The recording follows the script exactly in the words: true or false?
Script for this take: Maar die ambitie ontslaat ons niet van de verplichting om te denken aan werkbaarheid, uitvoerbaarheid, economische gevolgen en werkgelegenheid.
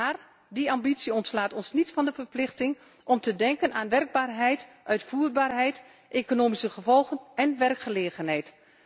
true